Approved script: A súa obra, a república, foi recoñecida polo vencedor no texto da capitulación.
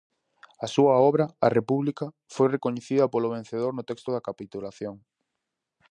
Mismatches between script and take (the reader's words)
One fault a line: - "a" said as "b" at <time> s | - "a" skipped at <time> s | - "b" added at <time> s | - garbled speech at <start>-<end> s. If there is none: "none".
none